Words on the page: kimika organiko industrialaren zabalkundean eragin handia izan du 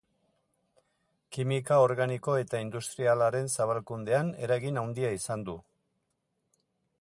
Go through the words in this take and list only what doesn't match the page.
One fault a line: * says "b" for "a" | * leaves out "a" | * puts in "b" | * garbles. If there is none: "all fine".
* puts in "eta"